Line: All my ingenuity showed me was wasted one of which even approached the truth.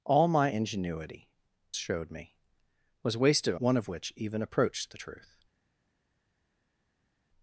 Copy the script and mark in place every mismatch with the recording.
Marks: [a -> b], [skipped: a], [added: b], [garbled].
All my ingenuity showed me was wasted one of which even approached the truth.